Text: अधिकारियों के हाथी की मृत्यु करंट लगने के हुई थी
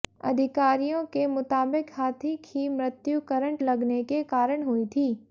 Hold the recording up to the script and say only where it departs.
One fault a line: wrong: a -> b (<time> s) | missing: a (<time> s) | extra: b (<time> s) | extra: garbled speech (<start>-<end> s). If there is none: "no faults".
extra: मुताबिक (1.3 s)
extra: कारण (4.3 s)